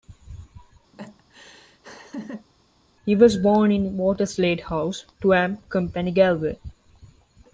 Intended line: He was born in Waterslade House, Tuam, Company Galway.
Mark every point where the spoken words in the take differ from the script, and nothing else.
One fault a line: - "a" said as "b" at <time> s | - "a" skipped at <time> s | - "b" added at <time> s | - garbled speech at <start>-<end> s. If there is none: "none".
none